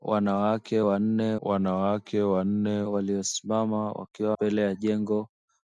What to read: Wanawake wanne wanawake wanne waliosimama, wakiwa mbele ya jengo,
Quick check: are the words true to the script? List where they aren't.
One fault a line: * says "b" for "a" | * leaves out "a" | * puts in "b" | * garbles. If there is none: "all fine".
all fine